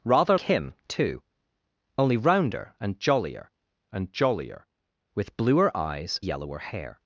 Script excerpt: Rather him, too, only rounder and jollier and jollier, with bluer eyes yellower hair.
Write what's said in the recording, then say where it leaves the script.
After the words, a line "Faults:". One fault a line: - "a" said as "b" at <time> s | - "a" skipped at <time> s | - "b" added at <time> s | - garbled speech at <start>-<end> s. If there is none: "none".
Rather him, too, only rounder and jollier and jollier, with bluer eyes yellower hair.
Faults:
none